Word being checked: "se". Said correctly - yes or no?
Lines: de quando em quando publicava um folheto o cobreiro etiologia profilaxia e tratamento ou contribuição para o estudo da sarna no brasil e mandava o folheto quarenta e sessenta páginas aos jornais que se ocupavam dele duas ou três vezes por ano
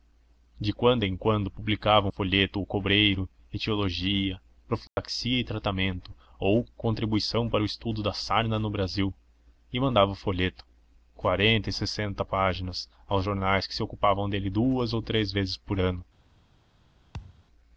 yes